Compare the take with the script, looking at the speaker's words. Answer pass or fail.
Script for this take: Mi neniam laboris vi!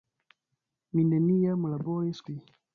pass